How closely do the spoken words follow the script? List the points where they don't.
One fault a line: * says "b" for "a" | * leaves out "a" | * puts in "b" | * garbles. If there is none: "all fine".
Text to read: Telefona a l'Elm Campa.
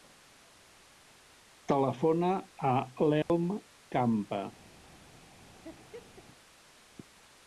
all fine